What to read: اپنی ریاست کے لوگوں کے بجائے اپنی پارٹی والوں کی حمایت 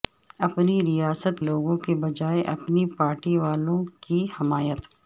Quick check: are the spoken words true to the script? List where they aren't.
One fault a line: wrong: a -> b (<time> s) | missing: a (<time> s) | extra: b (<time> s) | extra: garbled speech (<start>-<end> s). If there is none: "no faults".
missing: کے (1.4 s)